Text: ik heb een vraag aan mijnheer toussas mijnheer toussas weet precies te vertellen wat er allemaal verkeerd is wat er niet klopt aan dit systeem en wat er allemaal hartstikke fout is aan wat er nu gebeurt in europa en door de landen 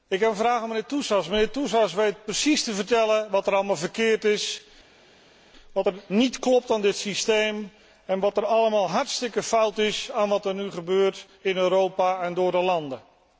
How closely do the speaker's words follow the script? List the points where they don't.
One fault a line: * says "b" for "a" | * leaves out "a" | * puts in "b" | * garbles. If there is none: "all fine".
all fine